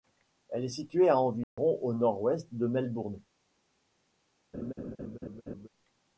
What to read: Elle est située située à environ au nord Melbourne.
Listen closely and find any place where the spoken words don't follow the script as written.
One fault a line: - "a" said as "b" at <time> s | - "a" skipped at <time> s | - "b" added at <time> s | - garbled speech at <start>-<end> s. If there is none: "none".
- "située" skipped at 1.1 s
- "ouest de" added at 2.2 s